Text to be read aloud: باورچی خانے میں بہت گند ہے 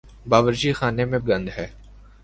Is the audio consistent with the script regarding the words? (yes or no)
no